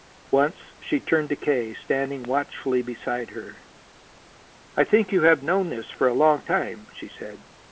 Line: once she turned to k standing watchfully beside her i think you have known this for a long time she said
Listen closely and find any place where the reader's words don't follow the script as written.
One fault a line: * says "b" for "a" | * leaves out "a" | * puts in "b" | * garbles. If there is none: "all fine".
all fine